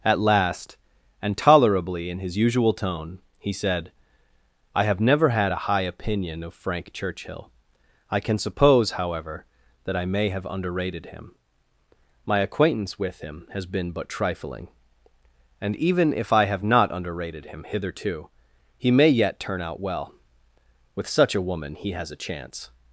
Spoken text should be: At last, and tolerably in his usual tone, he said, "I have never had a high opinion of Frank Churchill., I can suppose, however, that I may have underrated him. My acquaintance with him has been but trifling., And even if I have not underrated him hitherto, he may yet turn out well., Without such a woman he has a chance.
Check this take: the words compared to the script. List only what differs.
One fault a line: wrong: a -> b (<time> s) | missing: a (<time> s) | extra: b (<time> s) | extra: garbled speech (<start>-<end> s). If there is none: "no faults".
wrong: Without -> With (20.9 s)